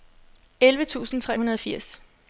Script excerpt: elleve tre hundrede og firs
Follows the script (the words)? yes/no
no